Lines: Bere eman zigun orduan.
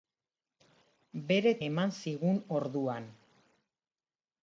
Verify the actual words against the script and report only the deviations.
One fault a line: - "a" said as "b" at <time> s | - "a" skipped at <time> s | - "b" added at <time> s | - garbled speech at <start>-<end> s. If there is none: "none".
none